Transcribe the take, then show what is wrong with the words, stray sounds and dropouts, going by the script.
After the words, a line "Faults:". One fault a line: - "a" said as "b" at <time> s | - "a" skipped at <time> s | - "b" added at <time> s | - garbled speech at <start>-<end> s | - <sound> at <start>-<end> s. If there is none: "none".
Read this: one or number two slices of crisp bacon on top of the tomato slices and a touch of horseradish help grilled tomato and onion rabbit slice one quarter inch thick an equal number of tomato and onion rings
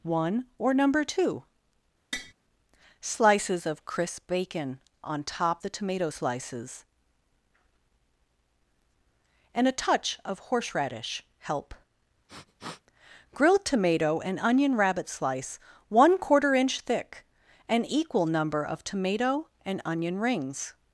one or number two slices of crisp bacon on top the tomato slices and a touch of horseradish help grilled tomato and onion rabbit slice one quarter inch thick an equal number of tomato and onion rings
Faults:
- tap at 2.1-2.3 s
- "of" skipped at 5.6 s
- sniff at 12.3-12.8 s